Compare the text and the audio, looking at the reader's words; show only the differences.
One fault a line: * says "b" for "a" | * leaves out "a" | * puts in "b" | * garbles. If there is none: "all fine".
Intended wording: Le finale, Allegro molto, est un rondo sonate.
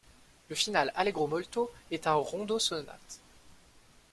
all fine